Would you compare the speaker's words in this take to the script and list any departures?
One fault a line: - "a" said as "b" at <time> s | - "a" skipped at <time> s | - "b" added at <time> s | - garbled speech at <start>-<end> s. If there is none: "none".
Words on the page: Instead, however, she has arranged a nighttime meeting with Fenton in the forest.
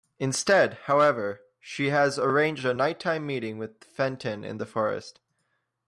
none